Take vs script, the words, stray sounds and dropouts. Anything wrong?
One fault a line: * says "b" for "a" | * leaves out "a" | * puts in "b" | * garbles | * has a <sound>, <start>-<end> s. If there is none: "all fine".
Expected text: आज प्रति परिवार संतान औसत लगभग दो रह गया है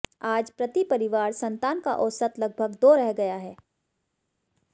* puts in "का"